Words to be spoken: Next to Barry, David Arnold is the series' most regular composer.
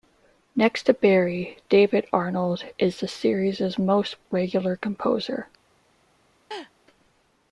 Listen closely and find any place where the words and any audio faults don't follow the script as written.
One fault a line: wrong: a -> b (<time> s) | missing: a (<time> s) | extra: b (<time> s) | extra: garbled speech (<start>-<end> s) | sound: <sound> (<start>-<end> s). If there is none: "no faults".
sound: laugh (6.5-6.7 s)